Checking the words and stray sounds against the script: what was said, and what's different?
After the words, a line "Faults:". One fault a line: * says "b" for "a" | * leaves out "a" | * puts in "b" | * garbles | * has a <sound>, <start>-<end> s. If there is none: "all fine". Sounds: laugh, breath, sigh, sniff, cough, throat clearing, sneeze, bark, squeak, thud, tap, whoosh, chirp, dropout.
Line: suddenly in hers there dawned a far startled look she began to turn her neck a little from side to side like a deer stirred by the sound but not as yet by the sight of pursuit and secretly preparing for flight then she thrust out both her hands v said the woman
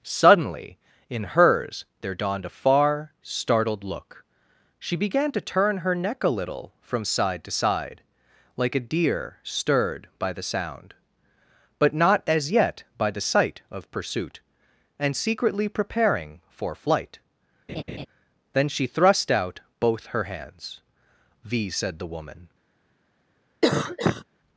suddenly in hers there dawned a far startled look she began to turn her neck a little from side to side like a deer stirred by the sound but not as yet by the sight of pursuit and secretly preparing for flight then she thrust out both her hands v said the woman
Faults:
* has a laugh, 17.7-18.1 s
* has a cough, 23.6-24.2 s